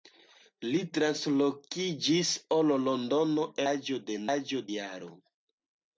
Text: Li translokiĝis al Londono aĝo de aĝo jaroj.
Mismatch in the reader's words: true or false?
false